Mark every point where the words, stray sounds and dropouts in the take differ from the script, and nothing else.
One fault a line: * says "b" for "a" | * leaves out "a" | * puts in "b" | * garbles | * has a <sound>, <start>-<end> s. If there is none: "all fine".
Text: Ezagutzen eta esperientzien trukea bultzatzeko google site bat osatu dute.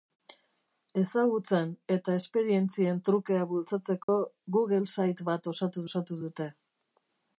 * has a dropout, 4.0-4.1 s
* puts in "osatu"